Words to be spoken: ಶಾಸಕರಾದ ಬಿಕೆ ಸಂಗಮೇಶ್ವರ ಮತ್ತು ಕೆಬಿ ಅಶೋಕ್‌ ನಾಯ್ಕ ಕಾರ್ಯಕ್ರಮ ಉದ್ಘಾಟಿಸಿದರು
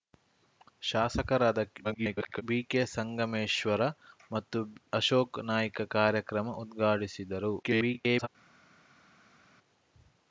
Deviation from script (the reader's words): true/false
true